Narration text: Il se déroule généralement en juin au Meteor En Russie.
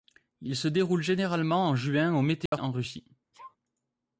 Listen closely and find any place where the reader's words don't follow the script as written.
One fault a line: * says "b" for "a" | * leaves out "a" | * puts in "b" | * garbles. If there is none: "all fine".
all fine